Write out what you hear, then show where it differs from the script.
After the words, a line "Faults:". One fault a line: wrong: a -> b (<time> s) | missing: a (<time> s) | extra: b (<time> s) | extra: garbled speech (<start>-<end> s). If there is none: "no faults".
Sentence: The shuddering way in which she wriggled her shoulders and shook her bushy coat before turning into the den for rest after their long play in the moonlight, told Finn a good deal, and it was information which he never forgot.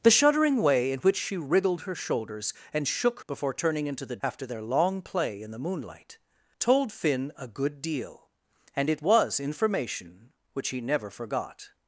The shuddering way in which she wriggled her shoulders and shook before turning into the after their long play in the moonlight, told Finn a good deal, and it was information which he never forgot.
Faults:
missing: her bushy coat (3.2 s)
missing: den for rest (4.2 s)